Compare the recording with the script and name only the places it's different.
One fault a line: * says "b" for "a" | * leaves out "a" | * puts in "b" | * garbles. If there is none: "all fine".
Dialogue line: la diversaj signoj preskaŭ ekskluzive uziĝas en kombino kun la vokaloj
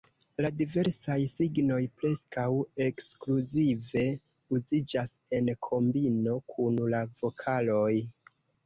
all fine